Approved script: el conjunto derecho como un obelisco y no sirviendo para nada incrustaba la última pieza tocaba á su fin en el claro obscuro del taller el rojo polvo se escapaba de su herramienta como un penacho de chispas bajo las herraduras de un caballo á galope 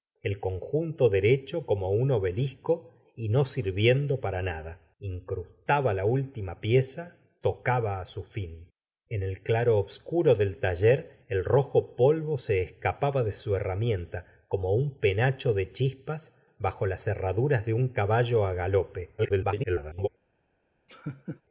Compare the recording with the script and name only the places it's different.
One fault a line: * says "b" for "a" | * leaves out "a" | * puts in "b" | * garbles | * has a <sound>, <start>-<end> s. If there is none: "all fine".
* garbles
* has a laugh, 20.9-21.4 s